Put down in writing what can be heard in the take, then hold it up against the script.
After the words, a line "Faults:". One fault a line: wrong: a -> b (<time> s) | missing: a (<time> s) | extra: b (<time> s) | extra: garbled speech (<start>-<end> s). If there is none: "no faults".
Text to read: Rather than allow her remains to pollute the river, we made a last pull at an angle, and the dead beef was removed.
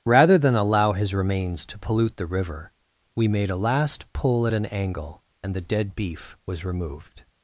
Rather than allow his remains to pollute the river, we made a last pull at an angle, and the dead beef was removed.
Faults:
wrong: her -> his (0.9 s)